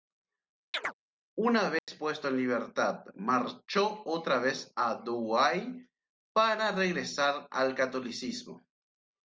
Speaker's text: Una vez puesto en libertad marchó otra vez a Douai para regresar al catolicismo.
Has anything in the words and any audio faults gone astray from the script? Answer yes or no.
yes